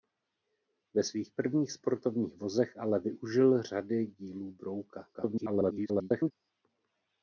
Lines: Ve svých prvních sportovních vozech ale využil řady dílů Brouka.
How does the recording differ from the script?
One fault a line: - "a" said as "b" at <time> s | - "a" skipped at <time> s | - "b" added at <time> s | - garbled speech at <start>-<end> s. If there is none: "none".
- garbled speech at 5.1-6.3 s